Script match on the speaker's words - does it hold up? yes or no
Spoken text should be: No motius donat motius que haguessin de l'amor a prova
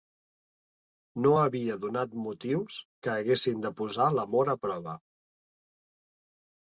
no